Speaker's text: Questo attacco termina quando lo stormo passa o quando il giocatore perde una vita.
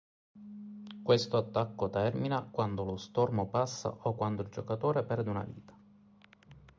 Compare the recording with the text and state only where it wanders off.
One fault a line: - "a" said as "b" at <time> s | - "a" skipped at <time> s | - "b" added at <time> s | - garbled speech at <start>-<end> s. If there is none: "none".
none